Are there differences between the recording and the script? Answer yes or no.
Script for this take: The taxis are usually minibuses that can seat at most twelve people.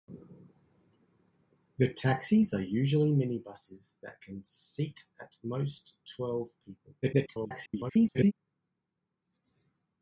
yes